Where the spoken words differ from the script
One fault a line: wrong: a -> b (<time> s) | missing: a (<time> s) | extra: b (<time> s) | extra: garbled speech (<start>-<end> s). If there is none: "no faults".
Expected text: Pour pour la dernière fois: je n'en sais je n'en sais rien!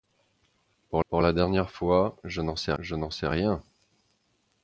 no faults